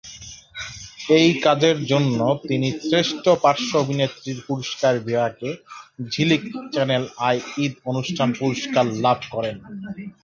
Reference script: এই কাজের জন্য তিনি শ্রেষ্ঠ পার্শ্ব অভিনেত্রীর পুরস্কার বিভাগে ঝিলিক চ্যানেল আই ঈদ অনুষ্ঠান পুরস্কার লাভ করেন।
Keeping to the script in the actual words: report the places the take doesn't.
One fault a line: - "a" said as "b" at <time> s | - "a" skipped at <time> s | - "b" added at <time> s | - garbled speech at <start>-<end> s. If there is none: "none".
none